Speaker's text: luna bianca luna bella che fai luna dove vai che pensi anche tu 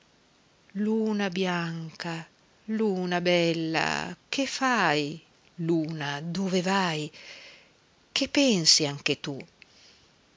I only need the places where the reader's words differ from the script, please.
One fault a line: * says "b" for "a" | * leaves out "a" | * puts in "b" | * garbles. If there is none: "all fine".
all fine